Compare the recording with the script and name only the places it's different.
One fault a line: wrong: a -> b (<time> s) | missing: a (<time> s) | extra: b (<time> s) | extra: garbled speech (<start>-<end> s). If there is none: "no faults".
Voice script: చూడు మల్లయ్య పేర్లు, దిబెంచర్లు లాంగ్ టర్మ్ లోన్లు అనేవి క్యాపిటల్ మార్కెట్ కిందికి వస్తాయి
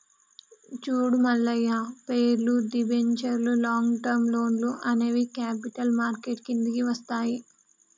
no faults